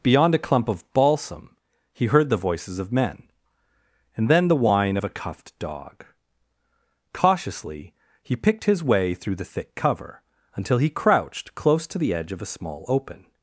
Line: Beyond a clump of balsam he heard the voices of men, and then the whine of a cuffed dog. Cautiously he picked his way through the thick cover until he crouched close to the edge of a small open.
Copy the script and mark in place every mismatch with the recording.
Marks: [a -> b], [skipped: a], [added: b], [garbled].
Beyond a clump of balsam he heard the voices of men, and then the whine of a cuffed dog. Cautiously he picked his way through the thick cover until he crouched close to the edge of a small open.